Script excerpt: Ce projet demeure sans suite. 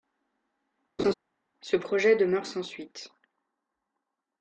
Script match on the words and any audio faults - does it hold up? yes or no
no